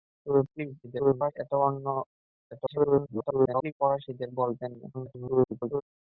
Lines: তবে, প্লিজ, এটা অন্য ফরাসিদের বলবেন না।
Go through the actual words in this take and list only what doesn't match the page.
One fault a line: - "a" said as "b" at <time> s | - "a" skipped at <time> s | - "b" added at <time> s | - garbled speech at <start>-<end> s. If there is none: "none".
- garbled speech at 0.8-1.3 s
- garbled speech at 2.5-3.7 s
- garbled speech at 4.9-5.8 s